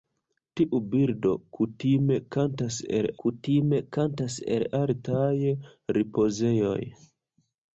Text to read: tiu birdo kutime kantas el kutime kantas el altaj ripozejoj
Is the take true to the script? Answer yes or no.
yes